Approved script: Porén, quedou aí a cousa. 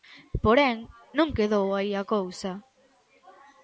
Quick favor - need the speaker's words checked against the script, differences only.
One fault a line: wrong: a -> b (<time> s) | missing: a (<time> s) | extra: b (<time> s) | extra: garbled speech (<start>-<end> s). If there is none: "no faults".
extra: non (1.2 s)